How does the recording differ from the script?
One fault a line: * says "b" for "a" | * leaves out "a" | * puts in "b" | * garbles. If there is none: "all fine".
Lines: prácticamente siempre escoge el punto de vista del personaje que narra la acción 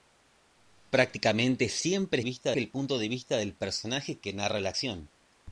* says "vista" for "escoge"